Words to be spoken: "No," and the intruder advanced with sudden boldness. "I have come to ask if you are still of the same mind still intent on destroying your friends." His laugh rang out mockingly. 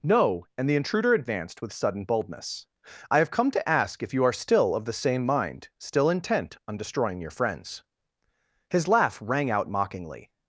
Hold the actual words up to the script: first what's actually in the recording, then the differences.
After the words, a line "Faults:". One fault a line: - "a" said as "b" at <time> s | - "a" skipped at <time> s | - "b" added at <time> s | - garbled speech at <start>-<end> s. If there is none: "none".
"No," and the intruder advanced with sudden boldness. "I have come to ask if you are still of the same mind still intent on destroying your friends." His laugh rang out mockingly.
Faults:
none